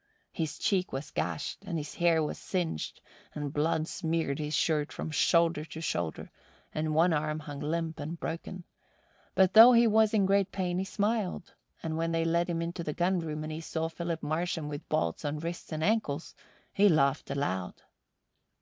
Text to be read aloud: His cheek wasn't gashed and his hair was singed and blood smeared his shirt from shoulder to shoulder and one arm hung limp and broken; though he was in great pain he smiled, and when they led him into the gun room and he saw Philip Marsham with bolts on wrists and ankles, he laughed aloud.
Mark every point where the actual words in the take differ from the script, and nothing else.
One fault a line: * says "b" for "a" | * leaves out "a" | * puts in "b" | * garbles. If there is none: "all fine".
* says "was" for "wasn't"
* puts in "but"